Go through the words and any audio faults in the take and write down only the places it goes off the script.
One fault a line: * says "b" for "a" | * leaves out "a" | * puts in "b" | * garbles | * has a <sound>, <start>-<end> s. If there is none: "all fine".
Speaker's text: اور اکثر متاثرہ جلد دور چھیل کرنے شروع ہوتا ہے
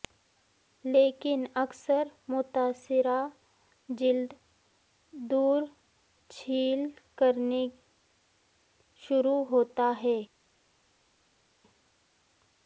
* says "لیکن" for "اور"